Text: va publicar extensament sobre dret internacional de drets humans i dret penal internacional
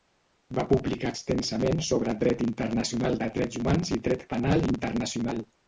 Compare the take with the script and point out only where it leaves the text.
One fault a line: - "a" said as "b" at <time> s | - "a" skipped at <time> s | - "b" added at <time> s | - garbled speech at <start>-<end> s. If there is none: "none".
none